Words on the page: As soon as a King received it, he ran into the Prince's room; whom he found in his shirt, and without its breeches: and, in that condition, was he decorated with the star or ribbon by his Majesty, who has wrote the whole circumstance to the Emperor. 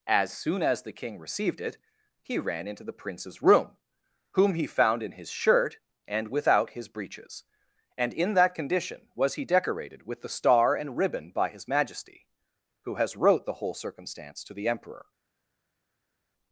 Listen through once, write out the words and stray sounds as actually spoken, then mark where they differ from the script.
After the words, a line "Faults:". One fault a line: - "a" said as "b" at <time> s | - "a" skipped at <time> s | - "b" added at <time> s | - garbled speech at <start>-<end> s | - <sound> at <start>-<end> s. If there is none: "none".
As soon as the King received it, he ran into the Prince's room; whom he found in his shirt, and without his breeches: and, in that condition, was he decorated with the star and ribbon by his Majesty, who has wrote the whole circumstance to the Emperor.
Faults:
- "a" said as "the" at 0.8 s
- "its" said as "his" at 6.7 s
- "or" said as "and" at 10.8 s